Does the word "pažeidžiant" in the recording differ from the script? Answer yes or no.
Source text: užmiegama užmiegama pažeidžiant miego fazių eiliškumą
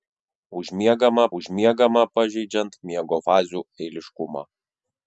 no